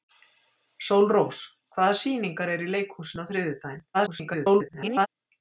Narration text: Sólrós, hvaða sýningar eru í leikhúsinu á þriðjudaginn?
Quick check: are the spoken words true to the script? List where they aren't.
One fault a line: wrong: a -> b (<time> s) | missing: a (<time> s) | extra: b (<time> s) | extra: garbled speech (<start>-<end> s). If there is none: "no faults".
extra: garbled speech (3.9-5.1 s)